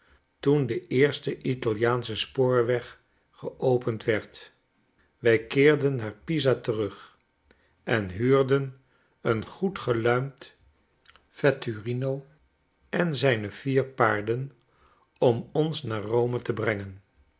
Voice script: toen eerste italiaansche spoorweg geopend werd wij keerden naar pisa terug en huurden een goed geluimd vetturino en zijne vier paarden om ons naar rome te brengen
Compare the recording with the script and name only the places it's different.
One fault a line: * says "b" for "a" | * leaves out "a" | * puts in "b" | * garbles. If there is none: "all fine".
* puts in "de"